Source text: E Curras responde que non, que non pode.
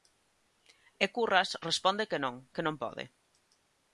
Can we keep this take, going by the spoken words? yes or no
yes